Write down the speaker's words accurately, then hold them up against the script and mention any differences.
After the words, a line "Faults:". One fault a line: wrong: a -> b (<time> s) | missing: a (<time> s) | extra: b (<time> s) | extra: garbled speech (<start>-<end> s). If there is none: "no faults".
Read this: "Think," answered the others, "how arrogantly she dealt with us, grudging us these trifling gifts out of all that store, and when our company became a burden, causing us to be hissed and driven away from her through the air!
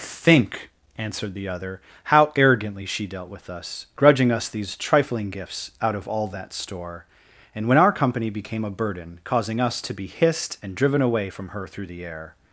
"Think," answered the other, "how arrogantly she dealt with us, grudging us these trifling gifts out of all that store, and when our company became a burden, causing us to be hissed and driven away from her through the air!
Faults:
wrong: others -> other (1.5 s)